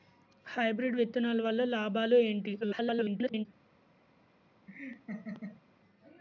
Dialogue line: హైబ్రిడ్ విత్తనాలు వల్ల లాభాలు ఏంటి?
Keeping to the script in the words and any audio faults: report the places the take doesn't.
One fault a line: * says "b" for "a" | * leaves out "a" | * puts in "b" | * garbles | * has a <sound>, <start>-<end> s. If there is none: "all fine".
* garbles
* has a laugh, 4.7-5.6 s